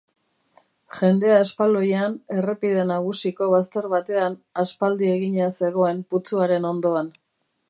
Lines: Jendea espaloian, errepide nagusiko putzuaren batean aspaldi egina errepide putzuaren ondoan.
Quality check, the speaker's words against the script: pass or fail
fail